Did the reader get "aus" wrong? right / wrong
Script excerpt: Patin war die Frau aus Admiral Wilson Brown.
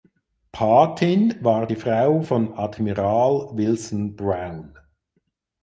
wrong